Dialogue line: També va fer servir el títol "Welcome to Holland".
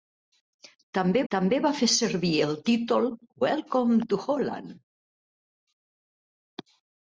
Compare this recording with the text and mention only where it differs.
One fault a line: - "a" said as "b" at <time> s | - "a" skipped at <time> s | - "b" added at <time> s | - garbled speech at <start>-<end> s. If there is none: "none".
- "també" added at 1.3 s